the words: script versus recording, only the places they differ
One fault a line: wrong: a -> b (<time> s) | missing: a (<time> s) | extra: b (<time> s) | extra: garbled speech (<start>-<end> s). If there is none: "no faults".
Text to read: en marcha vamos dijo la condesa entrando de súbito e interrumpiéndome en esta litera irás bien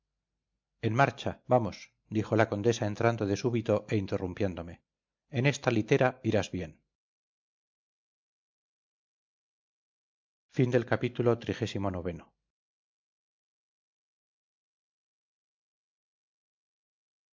no faults